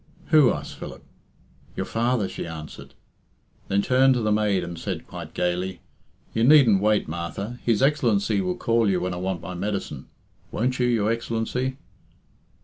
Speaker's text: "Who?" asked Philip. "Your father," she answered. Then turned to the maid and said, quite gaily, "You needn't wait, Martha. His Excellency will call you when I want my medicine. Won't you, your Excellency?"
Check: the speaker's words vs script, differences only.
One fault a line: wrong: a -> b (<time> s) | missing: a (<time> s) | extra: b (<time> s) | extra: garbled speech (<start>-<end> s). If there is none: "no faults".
no faults